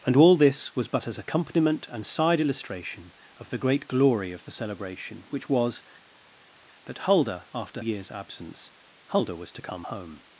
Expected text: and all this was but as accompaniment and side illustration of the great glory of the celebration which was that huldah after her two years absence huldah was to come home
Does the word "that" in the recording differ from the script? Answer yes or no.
no